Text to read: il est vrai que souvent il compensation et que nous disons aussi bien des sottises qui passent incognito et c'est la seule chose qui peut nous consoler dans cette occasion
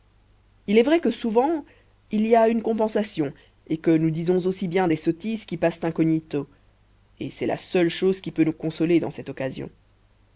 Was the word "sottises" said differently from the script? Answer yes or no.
no